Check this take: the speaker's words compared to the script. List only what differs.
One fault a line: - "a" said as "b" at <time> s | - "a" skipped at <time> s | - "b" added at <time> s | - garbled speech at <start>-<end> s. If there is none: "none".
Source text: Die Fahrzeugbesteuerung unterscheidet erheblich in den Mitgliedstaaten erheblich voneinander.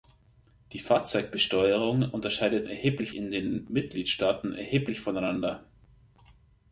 none